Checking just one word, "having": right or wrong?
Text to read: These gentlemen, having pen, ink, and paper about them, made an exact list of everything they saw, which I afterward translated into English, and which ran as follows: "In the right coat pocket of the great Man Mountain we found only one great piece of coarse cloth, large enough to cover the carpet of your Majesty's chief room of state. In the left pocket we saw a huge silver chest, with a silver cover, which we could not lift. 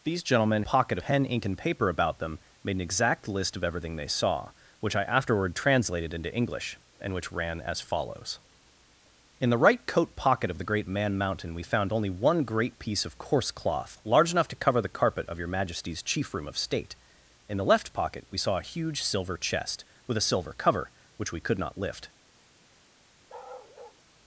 wrong